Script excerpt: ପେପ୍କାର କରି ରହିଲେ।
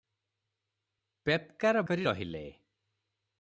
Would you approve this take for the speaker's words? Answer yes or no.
yes